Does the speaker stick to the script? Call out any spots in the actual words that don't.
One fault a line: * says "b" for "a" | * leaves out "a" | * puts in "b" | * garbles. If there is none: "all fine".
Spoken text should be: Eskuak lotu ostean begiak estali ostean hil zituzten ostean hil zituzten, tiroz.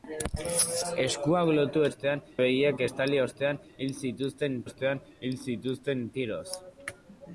all fine